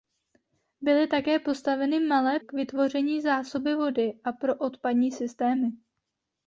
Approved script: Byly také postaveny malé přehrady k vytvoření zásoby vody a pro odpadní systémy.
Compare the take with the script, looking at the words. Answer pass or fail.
fail